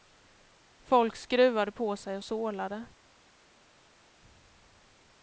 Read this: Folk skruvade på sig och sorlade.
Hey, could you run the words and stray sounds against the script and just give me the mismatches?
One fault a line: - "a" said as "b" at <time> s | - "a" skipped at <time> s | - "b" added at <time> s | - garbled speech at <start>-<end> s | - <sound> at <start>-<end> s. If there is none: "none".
none